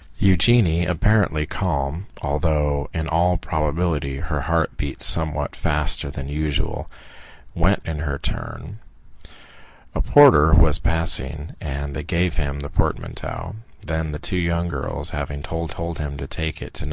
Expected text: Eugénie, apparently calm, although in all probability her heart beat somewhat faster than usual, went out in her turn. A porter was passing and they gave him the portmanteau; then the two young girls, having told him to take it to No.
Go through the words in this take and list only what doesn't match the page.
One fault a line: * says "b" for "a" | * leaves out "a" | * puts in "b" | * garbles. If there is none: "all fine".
* leaves out "out"
* puts in "told"